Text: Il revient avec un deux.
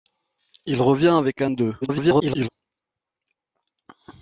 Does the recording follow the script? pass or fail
fail